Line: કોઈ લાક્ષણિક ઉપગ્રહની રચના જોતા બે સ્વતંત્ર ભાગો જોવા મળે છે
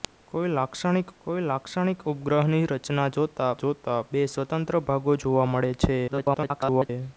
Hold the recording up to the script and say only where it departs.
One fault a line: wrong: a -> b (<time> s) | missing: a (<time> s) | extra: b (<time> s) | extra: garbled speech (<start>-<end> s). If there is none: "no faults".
extra: કોઈ લાક્ષણિક (1.2 s)
extra: જોતા (3.6 s)
extra: garbled speech (6.1-6.9 s)